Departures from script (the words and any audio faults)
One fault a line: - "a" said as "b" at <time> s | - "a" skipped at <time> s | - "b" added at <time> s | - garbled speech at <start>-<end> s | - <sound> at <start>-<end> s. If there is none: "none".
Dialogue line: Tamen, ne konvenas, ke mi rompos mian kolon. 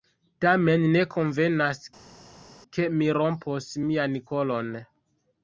none